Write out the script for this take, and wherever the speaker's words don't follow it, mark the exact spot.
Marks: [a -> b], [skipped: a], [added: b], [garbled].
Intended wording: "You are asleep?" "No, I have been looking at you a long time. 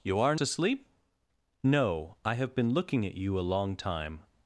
"You are asleep?" "No, I have been looking at you a long time.